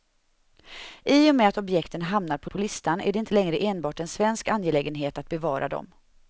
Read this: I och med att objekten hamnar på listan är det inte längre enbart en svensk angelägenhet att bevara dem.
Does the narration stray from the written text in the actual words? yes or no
yes